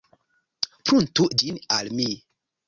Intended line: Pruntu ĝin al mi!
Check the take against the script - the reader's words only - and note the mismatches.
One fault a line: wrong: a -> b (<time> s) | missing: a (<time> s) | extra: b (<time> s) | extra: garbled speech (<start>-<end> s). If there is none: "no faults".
no faults